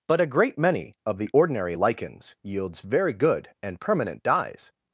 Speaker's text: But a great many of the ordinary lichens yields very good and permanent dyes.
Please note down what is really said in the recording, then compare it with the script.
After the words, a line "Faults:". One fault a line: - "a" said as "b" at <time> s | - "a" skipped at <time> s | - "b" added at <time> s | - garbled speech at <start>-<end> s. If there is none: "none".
But a great many of the ordinary lichens yields very good and permanent dyes.
Faults:
none